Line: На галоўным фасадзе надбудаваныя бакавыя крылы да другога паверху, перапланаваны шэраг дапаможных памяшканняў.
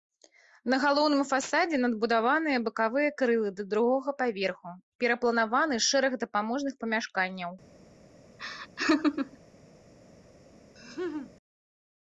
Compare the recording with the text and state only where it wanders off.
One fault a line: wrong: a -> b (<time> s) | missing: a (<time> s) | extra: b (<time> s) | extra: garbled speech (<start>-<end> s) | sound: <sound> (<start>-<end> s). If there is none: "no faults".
sound: laugh (8.4-9.4 s)
sound: laugh (10.8-11.3 s)